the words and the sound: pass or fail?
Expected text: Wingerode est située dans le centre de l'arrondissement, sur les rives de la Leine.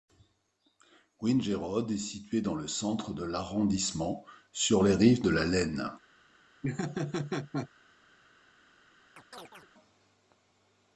fail